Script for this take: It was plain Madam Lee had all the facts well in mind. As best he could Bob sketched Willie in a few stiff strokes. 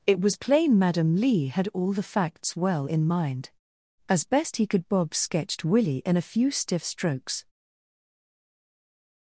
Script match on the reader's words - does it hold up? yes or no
yes